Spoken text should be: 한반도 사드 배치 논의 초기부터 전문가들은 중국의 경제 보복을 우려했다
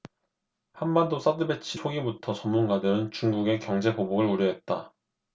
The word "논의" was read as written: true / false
false